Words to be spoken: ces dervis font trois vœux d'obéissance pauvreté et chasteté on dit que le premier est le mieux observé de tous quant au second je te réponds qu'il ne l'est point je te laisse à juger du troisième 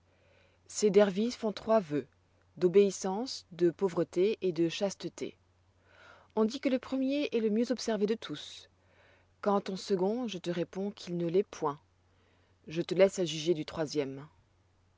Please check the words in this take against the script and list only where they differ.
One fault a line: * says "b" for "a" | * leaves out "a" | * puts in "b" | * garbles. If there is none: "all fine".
* puts in "de"
* puts in "de"